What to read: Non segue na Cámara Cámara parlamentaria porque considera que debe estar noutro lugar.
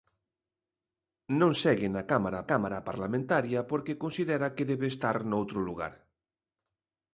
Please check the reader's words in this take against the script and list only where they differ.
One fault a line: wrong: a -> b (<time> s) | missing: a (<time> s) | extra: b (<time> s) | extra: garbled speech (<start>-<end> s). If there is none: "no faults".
no faults